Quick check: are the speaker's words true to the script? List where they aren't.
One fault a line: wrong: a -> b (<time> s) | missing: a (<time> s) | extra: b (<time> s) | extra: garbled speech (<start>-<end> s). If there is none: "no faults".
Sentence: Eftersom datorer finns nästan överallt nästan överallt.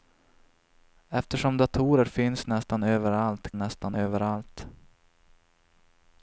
no faults